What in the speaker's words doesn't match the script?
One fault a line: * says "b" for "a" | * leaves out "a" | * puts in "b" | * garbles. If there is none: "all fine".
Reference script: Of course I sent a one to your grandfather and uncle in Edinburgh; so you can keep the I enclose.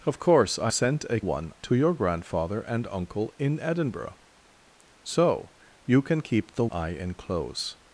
all fine